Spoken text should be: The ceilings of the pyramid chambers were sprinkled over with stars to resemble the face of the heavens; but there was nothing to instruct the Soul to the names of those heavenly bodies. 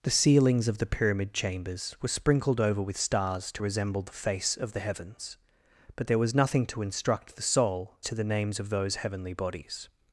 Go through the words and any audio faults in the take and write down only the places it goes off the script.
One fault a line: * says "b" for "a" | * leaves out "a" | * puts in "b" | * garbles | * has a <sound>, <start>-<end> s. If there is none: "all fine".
all fine